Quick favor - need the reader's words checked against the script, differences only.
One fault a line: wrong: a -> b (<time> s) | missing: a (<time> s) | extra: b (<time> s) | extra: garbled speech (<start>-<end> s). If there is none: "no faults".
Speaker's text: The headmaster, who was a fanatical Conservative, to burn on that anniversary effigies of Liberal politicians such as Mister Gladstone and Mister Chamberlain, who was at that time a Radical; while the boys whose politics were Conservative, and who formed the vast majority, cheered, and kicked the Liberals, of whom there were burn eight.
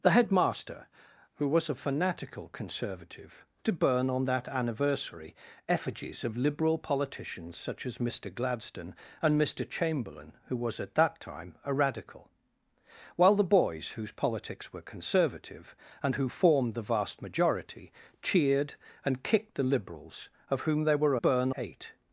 no faults